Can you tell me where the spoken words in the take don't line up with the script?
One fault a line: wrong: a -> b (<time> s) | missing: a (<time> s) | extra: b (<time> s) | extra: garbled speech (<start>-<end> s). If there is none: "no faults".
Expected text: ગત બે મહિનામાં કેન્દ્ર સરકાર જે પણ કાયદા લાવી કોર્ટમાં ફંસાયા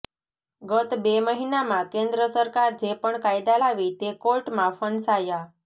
extra: તે (4.0 s)